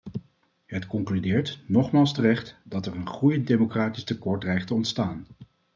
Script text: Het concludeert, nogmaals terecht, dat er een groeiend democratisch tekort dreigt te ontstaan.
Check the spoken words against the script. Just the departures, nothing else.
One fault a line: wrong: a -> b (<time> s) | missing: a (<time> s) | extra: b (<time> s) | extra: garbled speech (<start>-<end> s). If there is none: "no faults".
no faults